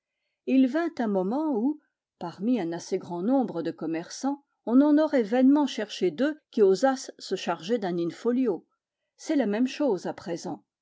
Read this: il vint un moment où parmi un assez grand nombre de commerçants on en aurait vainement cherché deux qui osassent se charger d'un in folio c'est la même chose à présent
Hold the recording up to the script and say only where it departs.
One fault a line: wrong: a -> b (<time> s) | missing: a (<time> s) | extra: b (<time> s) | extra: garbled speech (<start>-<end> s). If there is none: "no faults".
no faults